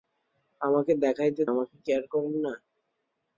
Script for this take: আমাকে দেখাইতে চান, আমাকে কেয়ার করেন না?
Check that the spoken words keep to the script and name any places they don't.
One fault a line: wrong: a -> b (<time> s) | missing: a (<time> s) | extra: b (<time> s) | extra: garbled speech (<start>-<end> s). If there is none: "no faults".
missing: চান (1.4 s)